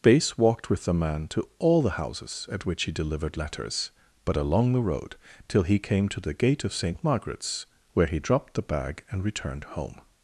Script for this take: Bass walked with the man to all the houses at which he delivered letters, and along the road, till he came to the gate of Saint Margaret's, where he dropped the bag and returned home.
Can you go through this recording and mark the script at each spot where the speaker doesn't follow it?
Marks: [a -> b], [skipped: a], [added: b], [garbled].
Bass walked with the man to all the houses at which he delivered letters, [and -> but] along the road, till he came to the gate of Saint Margaret's, where he dropped the bag and returned home.